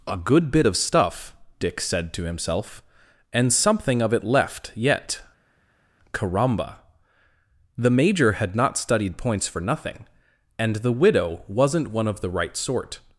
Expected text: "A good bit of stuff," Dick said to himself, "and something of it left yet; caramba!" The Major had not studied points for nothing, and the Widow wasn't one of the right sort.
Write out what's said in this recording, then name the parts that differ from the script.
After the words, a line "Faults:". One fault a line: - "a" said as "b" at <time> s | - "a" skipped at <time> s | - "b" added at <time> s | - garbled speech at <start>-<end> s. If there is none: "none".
"A good bit of stuff," Dick said to himself, "and something of it left yet; caramba!" The Major had not studied points for nothing, and the Widow wasn't one of the right sort.
Faults:
none